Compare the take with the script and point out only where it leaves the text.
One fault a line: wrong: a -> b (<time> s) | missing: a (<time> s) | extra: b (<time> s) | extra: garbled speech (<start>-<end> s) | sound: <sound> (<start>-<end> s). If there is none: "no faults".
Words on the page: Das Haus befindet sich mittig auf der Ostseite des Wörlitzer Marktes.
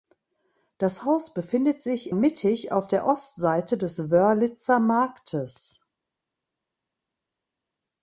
no faults